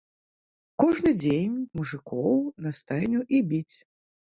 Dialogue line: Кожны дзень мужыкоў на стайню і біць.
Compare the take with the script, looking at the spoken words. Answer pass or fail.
pass